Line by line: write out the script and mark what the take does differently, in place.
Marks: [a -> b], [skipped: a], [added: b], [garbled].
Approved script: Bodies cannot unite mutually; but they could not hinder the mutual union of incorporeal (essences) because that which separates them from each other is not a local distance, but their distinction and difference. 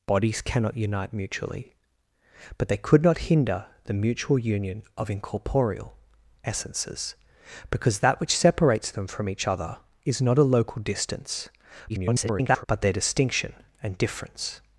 Bodies cannot unite mutually; but they could not hinder the mutual union of incorporeal (essences) because that which separates them from each other is not a local distance, [garbled] but their distinction and difference.